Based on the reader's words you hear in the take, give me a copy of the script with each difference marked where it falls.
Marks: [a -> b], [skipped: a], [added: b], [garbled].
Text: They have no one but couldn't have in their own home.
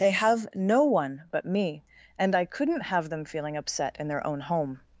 They have no one but [added: me and I] couldn't have [added: them feeling upset] in their own home.